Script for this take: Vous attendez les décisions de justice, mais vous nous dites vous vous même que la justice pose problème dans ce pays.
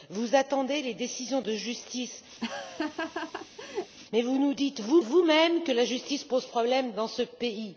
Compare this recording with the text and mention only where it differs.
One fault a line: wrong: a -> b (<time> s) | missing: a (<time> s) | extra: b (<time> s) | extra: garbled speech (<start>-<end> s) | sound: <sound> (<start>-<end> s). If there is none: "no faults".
sound: laugh (2.4-4.0 s)